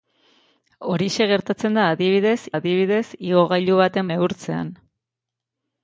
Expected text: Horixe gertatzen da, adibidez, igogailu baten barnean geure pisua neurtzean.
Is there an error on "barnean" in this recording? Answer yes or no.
yes